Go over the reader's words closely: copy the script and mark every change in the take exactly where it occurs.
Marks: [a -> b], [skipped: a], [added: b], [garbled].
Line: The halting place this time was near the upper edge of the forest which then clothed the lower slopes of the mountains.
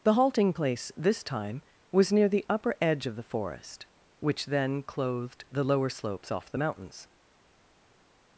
The halting place this time was near the upper edge of the forest which then clothed the lower slopes [of -> off] the mountains.